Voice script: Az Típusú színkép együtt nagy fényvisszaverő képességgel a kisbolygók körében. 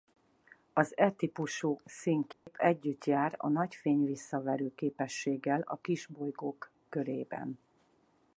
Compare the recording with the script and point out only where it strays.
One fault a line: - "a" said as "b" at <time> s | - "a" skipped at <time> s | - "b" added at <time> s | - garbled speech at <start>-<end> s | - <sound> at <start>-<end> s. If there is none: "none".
- "E" added at 1.0 s
- dropout at 2.3-2.5 s
- "jár a" added at 3.0 s